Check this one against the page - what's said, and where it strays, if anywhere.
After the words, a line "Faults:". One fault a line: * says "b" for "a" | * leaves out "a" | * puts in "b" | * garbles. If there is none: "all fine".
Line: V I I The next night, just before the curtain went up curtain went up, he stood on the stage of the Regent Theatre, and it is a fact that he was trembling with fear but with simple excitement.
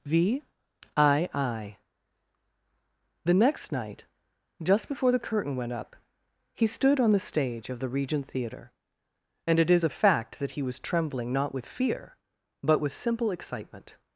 V I I The next night, just before the curtain went up, he stood on the stage of the Regent Theatre, and it is a fact that he was trembling not with fear but with simple excitement.
Faults:
* leaves out "curtain went up"
* puts in "not"